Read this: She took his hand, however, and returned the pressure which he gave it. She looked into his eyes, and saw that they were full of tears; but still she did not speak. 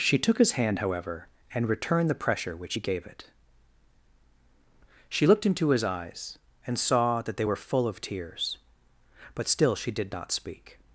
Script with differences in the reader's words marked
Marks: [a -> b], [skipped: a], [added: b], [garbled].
She took his hand, however, and returned the pressure which he gave it. She looked into his eyes, and saw that they were full of tears; but still she did not speak.